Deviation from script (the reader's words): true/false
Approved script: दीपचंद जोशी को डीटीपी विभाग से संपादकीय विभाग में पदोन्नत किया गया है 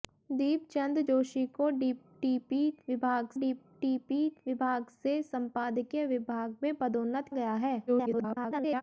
true